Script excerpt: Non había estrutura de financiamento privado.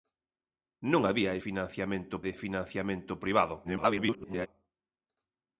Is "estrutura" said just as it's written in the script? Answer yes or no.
no